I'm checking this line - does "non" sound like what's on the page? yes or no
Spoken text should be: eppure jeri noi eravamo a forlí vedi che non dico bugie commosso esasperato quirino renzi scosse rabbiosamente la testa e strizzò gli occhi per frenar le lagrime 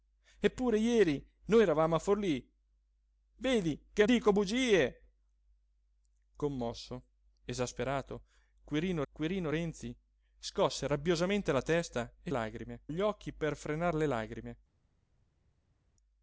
no